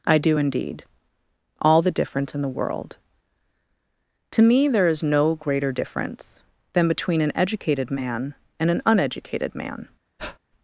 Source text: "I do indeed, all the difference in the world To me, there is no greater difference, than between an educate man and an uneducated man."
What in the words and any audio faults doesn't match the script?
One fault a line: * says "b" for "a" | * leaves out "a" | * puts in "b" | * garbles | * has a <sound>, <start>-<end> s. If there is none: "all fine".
* says "educated" for "educate"
* has a breath, 10.2-10.4 s